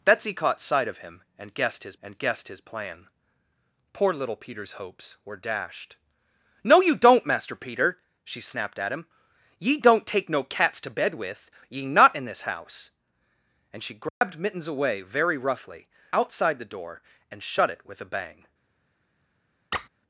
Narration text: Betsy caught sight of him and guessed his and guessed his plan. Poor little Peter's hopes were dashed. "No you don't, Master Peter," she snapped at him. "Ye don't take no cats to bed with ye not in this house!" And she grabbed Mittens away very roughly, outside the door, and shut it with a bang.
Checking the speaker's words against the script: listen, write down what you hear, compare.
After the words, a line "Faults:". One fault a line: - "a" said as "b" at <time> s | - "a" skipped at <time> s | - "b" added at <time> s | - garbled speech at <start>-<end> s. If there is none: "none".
Betsy caught sight of him and guessed his and guessed his plan. Poor little Peter's hopes were dashed. "No you don't, Master Peter," she snapped at him. "Ye don't take no cats to bed with ye not in this house!" And she grabbed Mittens away very roughly, outside the door, and shut it with a bang.
Faults:
none